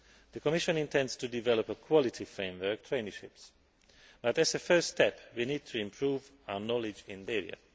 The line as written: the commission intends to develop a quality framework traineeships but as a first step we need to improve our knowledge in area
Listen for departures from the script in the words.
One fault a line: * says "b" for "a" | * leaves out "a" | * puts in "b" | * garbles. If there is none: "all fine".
all fine